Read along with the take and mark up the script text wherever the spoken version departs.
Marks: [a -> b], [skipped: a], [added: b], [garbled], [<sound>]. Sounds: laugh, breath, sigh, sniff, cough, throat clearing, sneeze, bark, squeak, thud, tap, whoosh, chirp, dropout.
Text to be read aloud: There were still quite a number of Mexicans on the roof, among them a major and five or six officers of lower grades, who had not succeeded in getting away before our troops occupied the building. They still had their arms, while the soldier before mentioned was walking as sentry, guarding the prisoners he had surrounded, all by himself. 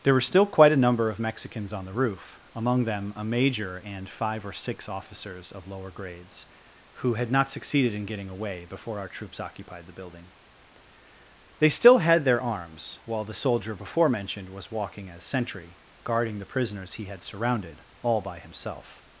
There were still quite a number of Mexicans on the roof, among them a major and five or six officers of lower grades, who had not succeeded in getting away before our troops occupied the building. They still had their arms, while the soldier before mentioned was walking as sentry, guarding the prisoners he had surrounded, all by himself.